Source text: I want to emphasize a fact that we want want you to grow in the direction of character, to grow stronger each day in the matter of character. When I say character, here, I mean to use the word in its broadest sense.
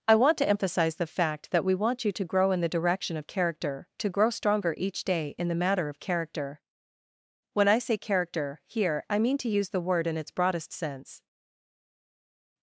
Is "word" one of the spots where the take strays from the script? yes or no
no